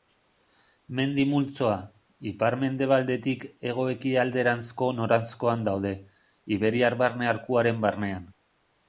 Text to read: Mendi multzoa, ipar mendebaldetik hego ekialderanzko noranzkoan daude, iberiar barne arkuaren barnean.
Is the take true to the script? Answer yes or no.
yes